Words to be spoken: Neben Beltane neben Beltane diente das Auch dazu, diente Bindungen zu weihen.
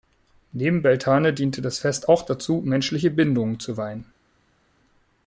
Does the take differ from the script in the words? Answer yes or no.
yes